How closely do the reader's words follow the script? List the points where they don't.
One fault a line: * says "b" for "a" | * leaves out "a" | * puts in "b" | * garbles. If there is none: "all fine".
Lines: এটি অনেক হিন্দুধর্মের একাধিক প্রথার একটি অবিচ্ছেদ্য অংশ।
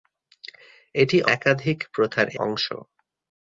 * leaves out "অনেক হিন্দুধর্মের"
* leaves out "একটি অবিচ্ছেদ্য"